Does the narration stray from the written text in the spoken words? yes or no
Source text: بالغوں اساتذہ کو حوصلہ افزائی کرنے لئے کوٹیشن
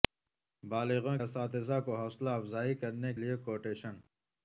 no